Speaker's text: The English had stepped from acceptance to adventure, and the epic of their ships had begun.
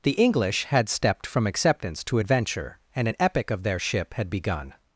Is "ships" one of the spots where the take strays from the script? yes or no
yes